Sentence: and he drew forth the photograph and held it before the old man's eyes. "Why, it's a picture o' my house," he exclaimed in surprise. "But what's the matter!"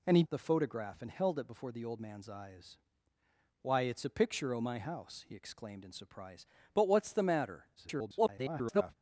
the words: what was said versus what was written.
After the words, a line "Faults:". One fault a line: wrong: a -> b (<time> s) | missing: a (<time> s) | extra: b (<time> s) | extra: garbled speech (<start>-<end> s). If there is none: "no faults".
and he the photograph and held it before the old man's eyes. "Why, it's a picture o' my house," he exclaimed in surprise. "But what's the matter!" [garbled]
Faults:
missing: drew forth (0.2 s)
extra: garbled speech (7.8-8.9 s)